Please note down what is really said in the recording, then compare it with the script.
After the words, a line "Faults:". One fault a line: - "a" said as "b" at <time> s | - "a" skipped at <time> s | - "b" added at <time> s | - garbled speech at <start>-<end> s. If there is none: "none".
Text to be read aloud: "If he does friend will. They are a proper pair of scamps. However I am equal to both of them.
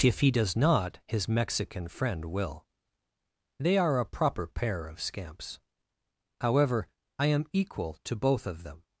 "If he does not, his Mexican friend will. They are a proper pair of scamps. However I am equal to both of them.
Faults:
- "not his Mexican" added at 0.6 s